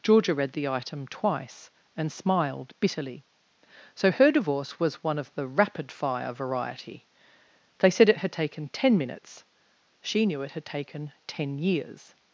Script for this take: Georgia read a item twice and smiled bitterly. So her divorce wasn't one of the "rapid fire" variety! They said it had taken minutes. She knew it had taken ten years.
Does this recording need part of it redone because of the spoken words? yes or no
yes